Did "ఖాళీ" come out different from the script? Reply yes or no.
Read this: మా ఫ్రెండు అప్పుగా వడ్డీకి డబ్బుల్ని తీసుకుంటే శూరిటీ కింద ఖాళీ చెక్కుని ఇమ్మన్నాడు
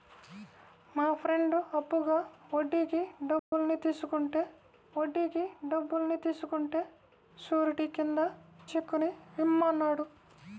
yes